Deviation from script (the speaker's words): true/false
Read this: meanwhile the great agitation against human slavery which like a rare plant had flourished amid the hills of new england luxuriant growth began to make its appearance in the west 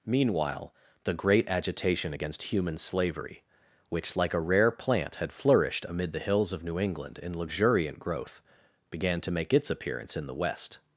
true